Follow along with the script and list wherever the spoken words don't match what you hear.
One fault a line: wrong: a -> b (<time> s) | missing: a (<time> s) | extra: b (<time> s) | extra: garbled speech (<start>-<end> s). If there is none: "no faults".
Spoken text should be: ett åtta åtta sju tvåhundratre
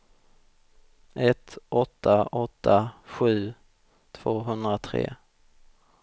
no faults